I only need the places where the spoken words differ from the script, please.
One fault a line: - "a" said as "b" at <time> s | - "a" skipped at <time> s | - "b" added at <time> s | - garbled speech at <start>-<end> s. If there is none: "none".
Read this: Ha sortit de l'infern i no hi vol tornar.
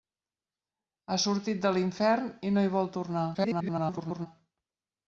- garbled speech at 3.3-4.3 s